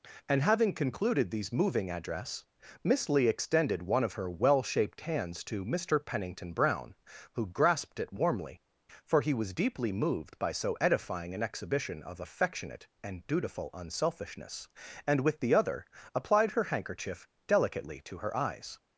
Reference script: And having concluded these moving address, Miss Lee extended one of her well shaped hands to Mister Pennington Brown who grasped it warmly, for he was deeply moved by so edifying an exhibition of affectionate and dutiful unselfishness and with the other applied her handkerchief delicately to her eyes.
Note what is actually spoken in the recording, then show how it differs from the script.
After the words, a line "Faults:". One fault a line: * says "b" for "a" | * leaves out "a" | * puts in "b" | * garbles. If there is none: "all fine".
And having concluded these moving address, Miss Lee extended one of her well shaped hands to Mister Pennington Brown who grasped it warmly, for he was deeply moved by so edifying an exhibition of affectionate and dutiful unselfishness and with the other applied her handkerchief delicately to her eyes.
Faults:
all fine